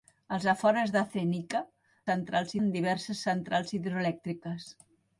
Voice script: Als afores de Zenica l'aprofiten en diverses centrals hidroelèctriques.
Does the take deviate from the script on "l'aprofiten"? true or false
true